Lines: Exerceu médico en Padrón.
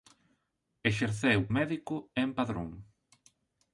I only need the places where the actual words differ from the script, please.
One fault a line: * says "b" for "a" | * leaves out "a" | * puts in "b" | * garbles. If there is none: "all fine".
all fine